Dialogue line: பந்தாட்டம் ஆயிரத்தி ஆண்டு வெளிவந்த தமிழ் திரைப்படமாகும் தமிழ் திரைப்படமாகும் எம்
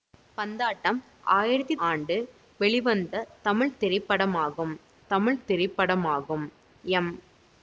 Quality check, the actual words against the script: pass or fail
pass